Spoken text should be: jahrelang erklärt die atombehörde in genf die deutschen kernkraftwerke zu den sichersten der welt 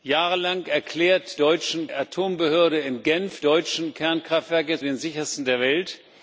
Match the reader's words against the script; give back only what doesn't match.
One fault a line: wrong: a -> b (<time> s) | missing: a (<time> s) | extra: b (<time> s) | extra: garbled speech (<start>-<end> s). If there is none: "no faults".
wrong: die -> deutschen (1.4 s)
missing: die (3.4 s)
missing: zu (4.8 s)